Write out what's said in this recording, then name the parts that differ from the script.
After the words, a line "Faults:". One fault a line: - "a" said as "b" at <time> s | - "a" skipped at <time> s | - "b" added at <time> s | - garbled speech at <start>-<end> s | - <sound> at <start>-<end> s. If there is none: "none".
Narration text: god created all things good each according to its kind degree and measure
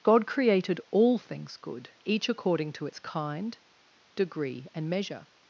god created all things good each according to its kind degree and measure
Faults:
none